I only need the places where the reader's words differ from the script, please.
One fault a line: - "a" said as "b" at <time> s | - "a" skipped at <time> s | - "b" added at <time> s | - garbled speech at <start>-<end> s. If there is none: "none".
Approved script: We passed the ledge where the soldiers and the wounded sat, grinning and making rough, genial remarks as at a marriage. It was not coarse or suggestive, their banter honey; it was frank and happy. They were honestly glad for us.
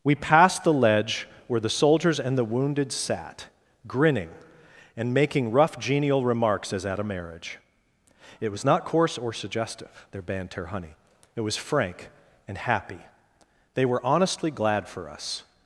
none